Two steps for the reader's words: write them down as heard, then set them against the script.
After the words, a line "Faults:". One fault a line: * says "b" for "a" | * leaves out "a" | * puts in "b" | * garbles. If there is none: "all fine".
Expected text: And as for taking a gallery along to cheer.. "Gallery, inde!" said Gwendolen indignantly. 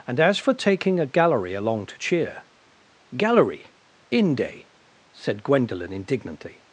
And as for taking a gallery along to cheer.. "Gallery, inde!" said Gwendolen indignantly.
Faults:
all fine